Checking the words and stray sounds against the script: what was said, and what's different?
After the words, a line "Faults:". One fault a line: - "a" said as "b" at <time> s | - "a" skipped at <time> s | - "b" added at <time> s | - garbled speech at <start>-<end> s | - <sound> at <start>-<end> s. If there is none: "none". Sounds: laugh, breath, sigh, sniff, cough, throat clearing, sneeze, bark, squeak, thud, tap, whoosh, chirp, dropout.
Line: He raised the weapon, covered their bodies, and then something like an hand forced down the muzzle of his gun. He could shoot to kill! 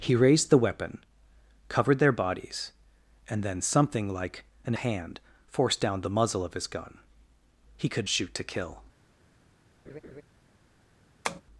He raised the weapon, covered their bodies, and then something like an hand forced down the muzzle of his gun. He could shoot to kill!
Faults:
- laugh at 9.9-10.2 s
- tap at 11.2-11.4 s